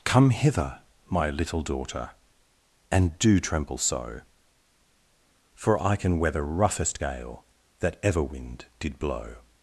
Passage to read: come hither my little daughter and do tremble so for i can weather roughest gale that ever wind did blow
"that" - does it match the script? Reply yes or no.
yes